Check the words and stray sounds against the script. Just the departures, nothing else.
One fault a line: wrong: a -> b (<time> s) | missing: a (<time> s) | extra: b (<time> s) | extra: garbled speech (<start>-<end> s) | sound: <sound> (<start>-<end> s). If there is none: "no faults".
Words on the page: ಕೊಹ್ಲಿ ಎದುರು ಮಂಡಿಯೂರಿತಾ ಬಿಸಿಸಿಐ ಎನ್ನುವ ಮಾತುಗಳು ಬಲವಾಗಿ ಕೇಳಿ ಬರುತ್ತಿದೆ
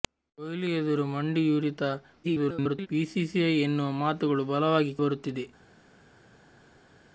extra: garbled speech (2.2-2.9 s)
missing: ಕೇಳಿ (4.9 s)